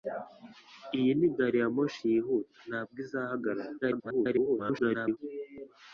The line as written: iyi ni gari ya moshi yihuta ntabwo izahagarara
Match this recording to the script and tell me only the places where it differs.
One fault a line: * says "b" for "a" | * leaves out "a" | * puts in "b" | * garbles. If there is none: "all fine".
* garbles